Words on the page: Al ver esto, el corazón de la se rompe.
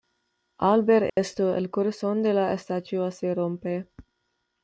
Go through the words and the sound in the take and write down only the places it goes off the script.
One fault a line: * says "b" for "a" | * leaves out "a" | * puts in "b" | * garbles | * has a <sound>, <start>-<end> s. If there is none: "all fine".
* has a dropout, 1.1-1.2 s
* puts in "estatua"